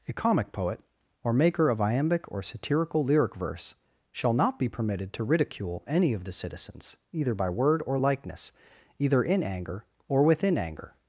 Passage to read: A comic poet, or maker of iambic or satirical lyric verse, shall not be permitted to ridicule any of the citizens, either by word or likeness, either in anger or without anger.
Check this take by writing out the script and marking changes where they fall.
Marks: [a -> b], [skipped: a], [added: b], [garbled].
A comic poet, or maker of iambic or satirical lyric verse, shall not be permitted to ridicule any of the citizens, either by word or likeness, either in anger or [without -> within] anger.